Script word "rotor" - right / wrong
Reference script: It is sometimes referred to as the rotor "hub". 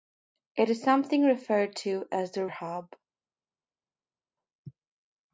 wrong